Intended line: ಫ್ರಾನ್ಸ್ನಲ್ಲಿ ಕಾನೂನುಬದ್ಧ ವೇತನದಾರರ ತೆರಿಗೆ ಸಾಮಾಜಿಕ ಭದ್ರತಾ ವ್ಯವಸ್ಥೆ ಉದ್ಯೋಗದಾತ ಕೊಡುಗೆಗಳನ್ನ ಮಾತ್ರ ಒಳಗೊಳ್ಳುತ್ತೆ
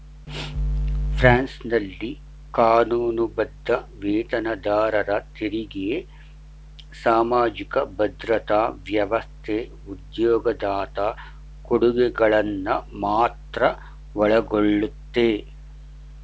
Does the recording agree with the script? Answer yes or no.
yes